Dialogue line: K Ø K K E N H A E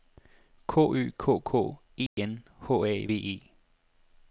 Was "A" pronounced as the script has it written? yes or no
yes